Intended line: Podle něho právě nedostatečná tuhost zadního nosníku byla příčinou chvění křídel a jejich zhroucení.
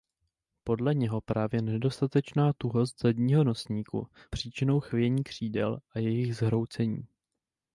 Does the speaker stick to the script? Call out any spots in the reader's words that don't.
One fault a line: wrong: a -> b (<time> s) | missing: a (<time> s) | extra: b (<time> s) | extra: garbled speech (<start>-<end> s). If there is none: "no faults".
missing: byla (4.1 s)